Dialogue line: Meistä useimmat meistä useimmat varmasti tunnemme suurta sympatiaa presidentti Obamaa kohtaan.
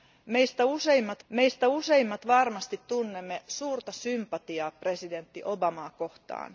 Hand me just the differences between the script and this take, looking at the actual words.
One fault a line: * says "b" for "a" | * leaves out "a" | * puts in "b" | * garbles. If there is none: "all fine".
all fine